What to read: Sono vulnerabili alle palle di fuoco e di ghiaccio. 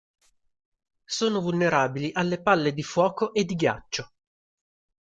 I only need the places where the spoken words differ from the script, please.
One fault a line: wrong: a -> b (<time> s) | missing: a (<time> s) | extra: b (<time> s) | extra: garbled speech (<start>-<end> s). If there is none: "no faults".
no faults